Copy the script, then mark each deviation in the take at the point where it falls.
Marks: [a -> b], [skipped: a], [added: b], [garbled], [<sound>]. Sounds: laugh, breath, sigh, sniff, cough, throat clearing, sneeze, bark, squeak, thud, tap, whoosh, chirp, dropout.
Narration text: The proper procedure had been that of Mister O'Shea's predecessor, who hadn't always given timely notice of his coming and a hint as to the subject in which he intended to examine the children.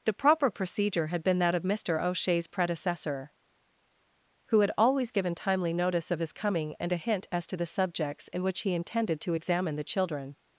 The proper procedure had been that of Mister O'Shea's predecessor, who [hadn't -> had] always given timely notice of his coming and a hint as to the [subject -> subjects] in which he intended to examine the children.